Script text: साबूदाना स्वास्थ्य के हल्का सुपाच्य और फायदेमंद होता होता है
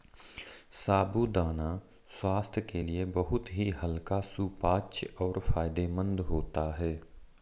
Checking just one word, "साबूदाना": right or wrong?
right